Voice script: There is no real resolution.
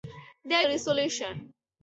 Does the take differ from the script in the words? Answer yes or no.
yes